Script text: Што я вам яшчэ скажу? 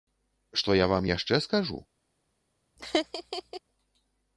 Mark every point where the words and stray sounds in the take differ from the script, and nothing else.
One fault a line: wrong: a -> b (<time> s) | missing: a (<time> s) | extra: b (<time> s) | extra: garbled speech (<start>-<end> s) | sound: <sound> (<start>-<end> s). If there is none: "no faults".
sound: laugh (2.8-3.6 s)